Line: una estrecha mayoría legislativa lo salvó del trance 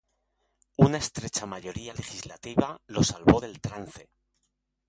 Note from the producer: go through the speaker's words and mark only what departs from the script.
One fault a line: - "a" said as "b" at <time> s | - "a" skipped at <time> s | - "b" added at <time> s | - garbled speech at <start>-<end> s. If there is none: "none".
none